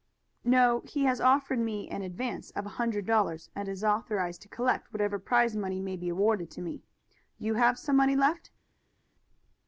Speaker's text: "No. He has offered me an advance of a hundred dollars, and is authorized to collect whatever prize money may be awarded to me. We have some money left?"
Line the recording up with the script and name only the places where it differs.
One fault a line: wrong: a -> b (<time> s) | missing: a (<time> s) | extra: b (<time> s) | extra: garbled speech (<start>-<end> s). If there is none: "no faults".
wrong: We -> You (7.4 s)